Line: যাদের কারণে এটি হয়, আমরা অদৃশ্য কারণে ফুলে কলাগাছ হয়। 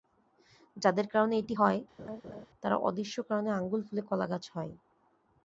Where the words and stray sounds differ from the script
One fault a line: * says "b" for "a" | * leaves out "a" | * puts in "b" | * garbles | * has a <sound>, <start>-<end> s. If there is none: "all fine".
* has a laugh, 2.0-2.5 s
* says "তারা" for "আমরা"
* puts in "আঙুল"